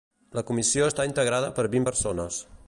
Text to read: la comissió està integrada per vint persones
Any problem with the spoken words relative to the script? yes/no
no